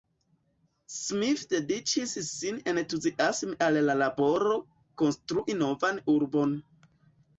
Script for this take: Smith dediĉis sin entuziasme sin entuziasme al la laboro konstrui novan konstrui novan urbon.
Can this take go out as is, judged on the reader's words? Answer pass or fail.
fail